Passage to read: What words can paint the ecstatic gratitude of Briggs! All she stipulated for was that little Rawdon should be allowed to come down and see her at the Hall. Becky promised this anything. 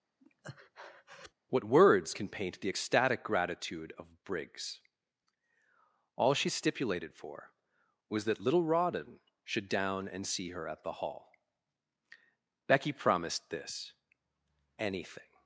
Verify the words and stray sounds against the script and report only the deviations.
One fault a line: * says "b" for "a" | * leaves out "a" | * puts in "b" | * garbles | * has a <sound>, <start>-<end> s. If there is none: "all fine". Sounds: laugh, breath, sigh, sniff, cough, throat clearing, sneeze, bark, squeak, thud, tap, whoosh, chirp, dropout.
* has a breath, 0.2-1.3 s
* leaves out "be allowed to come"